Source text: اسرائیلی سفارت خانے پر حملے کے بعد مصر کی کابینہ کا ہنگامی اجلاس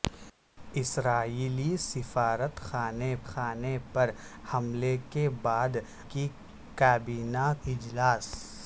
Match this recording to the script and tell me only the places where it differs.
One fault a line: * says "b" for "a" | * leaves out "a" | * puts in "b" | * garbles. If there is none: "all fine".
* puts in "خانے"
* leaves out "مصر"
* leaves out "کا ہنگامی"